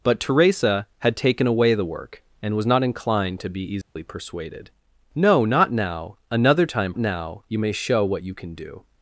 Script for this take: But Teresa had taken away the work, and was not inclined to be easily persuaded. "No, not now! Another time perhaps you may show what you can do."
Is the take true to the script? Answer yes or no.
no